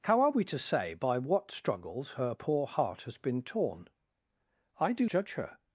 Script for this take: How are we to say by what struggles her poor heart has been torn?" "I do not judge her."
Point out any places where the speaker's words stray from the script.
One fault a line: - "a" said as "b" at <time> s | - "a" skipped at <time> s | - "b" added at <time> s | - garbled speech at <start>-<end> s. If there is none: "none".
- "not" skipped at 5.1 s